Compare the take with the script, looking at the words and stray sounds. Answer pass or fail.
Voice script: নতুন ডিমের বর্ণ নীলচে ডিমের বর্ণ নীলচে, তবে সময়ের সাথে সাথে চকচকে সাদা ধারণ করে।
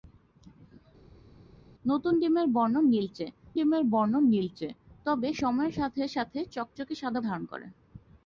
pass